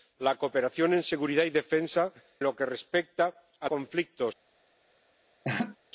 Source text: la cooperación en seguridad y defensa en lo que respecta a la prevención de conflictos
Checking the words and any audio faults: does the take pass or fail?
fail